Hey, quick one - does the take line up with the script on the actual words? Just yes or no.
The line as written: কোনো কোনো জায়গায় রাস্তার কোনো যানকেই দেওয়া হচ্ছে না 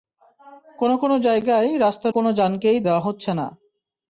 yes